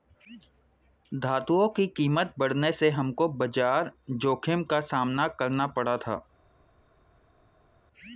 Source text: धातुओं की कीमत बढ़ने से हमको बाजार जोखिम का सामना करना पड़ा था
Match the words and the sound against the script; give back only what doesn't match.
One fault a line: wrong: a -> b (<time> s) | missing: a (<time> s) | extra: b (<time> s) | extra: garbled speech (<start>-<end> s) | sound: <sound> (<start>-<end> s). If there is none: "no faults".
no faults